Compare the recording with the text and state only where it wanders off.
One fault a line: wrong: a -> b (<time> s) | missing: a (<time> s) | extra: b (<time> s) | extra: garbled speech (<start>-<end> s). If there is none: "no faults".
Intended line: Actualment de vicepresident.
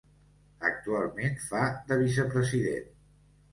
extra: fa (1.5 s)